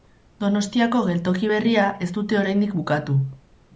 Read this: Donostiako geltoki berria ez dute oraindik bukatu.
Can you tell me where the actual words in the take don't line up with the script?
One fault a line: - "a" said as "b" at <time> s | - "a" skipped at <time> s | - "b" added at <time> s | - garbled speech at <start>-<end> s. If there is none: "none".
none